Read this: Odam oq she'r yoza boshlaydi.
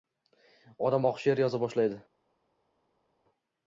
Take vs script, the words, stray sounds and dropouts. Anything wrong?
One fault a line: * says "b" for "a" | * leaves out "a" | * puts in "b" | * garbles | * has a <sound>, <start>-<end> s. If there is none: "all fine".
all fine